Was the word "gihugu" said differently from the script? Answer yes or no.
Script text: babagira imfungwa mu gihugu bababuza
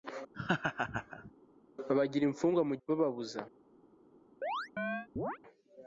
yes